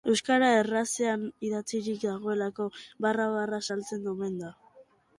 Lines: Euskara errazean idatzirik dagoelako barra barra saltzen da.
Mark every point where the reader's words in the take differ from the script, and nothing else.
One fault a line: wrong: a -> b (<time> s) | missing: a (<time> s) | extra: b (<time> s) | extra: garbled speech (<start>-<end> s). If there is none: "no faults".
extra: omen (4.2 s)